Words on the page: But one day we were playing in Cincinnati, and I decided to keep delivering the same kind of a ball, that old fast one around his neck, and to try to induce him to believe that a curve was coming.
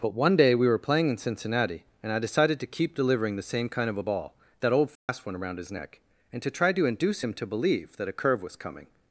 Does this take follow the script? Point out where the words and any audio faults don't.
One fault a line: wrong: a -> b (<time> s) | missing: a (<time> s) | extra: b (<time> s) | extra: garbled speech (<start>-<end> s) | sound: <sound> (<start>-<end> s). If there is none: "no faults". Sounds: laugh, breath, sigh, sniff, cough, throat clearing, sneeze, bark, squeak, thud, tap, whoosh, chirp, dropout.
sound: dropout (5.0-5.1 s)